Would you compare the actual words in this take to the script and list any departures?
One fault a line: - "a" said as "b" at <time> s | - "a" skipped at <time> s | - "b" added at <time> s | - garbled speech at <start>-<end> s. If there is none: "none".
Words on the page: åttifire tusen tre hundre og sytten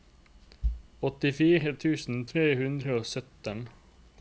none